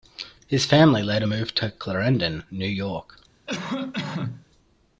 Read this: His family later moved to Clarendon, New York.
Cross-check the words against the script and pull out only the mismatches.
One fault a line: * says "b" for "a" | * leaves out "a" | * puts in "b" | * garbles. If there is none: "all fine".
all fine